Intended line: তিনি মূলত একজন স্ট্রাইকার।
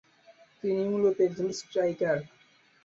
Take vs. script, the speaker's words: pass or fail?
pass